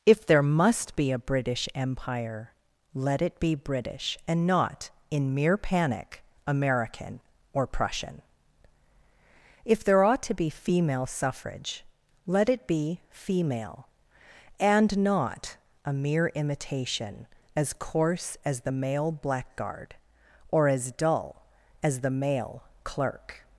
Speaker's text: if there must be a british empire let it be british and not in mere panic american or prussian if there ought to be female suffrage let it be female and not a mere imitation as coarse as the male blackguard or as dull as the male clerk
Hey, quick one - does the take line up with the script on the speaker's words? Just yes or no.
yes